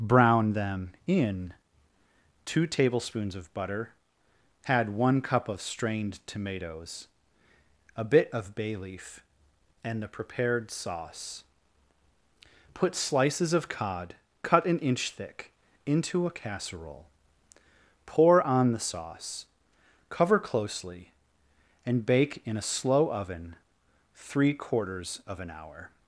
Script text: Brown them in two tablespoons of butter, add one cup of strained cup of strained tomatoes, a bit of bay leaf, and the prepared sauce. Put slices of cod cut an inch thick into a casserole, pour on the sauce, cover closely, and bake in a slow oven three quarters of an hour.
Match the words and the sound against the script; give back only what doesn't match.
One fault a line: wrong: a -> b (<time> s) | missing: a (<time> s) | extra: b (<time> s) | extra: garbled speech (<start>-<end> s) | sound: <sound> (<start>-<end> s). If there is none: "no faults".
missing: cup of strained (6.2 s)